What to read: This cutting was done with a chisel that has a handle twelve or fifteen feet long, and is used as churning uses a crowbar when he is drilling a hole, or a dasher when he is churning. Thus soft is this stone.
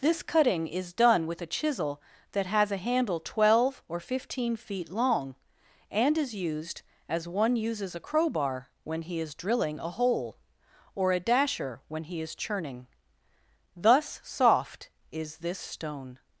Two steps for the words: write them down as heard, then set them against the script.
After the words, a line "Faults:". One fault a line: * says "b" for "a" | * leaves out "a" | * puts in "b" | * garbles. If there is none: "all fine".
This cutting is done with a chisel that has a handle twelve or fifteen feet long, and is used as one uses a crowbar when he is drilling a hole, or a dasher when he is churning. Thus soft is this stone.
Faults:
* says "is" for "was"
* says "one" for "churning"